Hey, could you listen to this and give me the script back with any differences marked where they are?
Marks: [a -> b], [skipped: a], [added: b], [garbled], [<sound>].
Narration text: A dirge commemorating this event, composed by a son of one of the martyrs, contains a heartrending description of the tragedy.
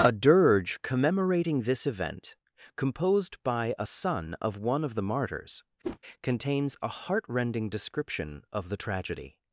A dirge commemorating this event, composed by a son of one of the martyrs, [whoosh] contains a heartrending description of the tragedy.